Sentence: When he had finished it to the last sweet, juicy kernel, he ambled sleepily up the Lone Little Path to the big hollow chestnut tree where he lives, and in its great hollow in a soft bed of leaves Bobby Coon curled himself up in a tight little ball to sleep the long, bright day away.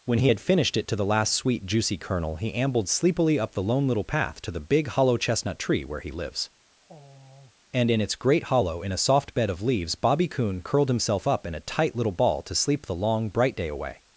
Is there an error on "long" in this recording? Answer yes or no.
no